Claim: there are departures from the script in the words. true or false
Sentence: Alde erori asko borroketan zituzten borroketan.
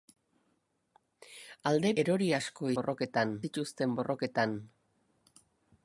false